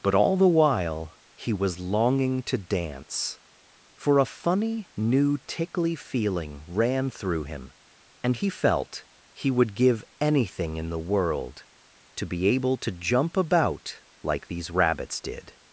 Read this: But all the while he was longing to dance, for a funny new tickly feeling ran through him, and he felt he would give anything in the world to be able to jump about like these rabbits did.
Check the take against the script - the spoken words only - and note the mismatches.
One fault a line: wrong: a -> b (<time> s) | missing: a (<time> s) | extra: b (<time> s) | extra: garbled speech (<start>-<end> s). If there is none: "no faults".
no faults